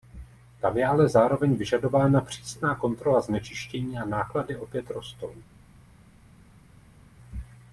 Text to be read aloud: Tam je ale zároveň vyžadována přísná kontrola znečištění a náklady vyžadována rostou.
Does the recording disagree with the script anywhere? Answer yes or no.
yes